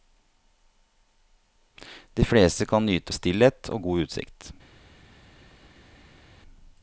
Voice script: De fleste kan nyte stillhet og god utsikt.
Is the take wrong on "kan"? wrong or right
right